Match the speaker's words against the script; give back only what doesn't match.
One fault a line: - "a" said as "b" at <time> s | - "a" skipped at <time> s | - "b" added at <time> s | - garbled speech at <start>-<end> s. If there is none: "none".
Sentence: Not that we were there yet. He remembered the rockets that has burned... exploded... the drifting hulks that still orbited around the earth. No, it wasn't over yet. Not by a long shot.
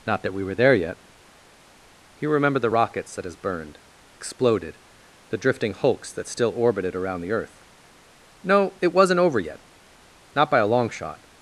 none